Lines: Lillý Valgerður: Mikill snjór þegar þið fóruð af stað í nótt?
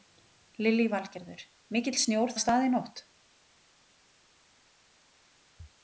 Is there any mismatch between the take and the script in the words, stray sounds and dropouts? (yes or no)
yes